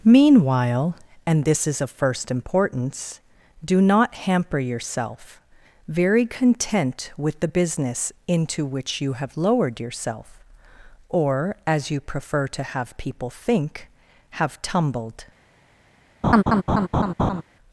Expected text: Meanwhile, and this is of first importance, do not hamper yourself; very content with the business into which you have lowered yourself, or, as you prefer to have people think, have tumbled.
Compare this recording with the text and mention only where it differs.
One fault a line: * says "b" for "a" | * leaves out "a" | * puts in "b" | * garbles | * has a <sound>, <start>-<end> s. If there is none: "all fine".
* has a laugh, 16.2-17.4 s